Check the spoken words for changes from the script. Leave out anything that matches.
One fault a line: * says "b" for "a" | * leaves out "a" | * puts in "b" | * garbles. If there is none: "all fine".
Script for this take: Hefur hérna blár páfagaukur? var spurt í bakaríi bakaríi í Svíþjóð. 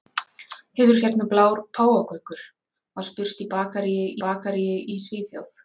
all fine